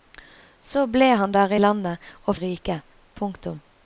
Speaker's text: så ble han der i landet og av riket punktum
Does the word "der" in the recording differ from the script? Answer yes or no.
no